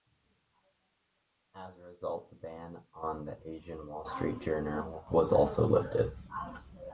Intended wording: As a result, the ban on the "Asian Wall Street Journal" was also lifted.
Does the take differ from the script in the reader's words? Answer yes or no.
no